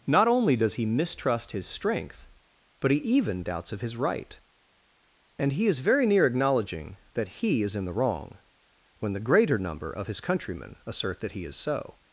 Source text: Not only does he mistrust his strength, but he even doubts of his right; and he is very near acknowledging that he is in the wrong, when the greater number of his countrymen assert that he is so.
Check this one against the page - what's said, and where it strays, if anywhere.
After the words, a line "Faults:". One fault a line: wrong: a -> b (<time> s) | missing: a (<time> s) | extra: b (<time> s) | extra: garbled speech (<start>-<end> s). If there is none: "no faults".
Not only does he mistrust his strength, but he even doubts of his right; and he is very near acknowledging that he is in the wrong, when the greater number of his countrymen assert that he is so.
Faults:
no faults